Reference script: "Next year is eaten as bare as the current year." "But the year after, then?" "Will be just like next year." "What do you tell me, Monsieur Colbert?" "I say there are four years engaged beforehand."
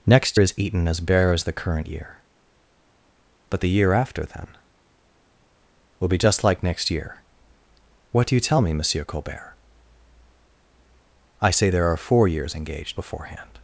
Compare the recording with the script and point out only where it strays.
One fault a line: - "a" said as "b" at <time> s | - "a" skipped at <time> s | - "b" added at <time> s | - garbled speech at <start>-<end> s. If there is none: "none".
- "year" skipped at 0.4 s